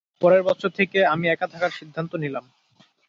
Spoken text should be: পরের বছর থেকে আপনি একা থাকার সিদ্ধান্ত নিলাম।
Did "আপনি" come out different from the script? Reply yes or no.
yes